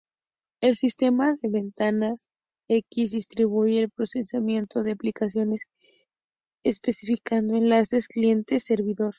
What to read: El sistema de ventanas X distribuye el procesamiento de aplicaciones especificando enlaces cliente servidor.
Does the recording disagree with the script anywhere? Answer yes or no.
no